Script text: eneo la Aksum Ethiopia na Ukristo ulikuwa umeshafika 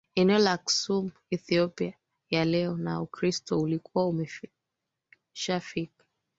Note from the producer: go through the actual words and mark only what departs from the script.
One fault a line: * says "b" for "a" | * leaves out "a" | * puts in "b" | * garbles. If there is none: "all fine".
* puts in "ya leo"